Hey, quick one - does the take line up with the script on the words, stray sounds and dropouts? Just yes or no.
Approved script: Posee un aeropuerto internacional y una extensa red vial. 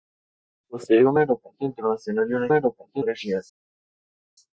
no